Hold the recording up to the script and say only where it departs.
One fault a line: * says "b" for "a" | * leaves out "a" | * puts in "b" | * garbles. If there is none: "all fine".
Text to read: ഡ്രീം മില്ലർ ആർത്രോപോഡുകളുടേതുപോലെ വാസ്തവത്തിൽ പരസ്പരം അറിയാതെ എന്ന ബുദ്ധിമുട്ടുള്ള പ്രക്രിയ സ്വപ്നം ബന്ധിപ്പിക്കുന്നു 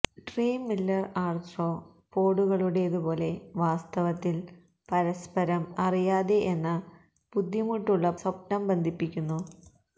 * leaves out "പ്രക്രിയ"